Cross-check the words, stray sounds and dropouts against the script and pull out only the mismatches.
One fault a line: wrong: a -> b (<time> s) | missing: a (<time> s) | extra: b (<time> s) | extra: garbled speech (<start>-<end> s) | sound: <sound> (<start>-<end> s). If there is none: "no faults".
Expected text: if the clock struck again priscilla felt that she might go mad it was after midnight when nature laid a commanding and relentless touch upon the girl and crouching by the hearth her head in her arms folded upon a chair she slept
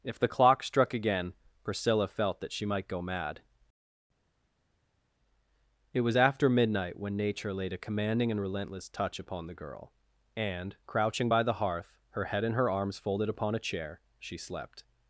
no faults